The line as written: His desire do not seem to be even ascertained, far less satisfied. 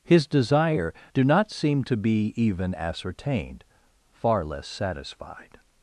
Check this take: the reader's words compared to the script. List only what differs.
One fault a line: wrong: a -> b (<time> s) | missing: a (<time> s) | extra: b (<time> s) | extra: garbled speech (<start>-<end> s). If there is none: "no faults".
no faults